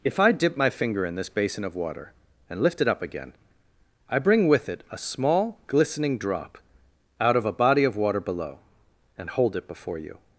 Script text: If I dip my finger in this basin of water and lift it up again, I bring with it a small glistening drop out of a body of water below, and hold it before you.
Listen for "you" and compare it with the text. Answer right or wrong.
right